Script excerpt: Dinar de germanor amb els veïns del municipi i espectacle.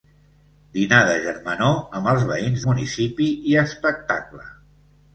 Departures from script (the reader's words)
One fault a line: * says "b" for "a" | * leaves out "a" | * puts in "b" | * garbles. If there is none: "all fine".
* leaves out "del"